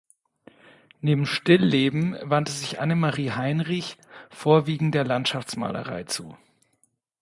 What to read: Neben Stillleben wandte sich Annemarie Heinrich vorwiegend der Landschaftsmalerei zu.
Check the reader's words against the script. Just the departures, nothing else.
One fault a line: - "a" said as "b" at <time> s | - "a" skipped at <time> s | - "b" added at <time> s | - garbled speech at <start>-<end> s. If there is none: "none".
none